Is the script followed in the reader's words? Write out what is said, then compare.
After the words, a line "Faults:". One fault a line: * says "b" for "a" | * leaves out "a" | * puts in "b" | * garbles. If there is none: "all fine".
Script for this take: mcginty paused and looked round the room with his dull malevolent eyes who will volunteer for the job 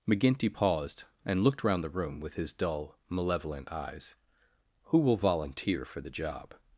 mcginty paused and looked round the room with his dull malevolent eyes who will volunteer for the job
Faults:
all fine